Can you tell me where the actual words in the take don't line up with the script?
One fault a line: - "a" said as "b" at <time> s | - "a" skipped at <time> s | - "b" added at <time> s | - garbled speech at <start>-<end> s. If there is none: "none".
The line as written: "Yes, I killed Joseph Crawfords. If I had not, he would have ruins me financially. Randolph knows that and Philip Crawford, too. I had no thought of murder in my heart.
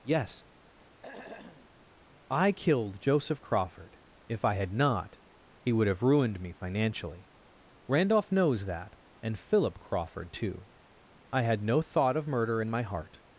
- "Crawfords" said as "Crawford" at 3.4 s
- "ruins" said as "ruined" at 6.0 s